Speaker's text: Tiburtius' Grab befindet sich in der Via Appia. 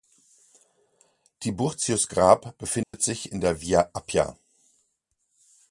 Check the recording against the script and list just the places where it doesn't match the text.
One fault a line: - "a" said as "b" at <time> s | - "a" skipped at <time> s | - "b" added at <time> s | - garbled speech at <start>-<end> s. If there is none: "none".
none